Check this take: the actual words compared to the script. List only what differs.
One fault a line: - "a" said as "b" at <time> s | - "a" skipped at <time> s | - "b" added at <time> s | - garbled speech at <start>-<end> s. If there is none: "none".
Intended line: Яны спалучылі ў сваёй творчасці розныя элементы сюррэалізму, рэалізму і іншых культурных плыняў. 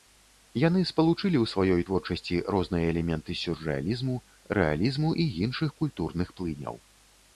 none